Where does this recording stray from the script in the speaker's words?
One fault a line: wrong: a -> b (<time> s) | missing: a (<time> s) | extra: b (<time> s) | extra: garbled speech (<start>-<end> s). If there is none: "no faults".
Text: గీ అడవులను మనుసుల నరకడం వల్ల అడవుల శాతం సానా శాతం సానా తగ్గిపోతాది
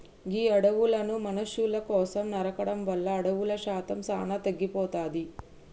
extra: కోసం (1.9 s)
missing: శాతం సానా (4.4 s)